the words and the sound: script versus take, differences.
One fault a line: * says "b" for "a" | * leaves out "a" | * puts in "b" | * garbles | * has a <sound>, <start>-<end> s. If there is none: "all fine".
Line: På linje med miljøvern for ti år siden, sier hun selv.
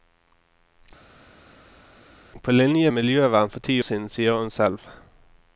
* leaves out "med"
* leaves out "år"